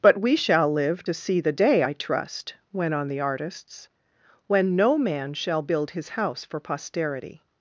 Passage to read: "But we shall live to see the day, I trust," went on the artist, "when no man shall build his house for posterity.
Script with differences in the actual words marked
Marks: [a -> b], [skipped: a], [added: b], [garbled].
"But we shall live to see the day, I trust," went on the [artist, -> artists] "when no man shall build his house for posterity.